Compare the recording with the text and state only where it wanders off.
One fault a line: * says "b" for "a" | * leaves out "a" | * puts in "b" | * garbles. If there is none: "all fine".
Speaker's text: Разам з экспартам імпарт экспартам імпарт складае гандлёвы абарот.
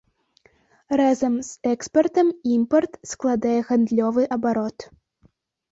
* leaves out "экспартам імпарт"